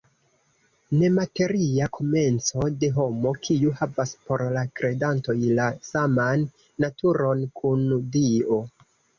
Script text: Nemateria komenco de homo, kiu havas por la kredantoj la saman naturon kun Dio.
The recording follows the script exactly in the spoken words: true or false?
true